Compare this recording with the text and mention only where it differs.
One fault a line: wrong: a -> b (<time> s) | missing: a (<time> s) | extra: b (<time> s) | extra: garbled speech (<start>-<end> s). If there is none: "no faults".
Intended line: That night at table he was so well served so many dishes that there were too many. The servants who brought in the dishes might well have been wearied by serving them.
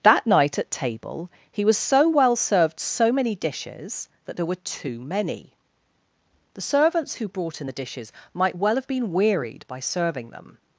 no faults